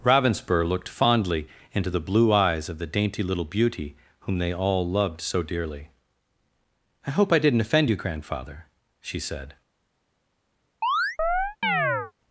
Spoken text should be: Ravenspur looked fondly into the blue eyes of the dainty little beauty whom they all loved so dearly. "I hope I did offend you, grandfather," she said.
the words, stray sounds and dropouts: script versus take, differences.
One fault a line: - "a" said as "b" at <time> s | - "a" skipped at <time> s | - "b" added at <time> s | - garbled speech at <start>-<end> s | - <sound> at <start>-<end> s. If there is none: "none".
- "did" said as "didn't" at 7.4 s
- chirp at 10.8-12.1 s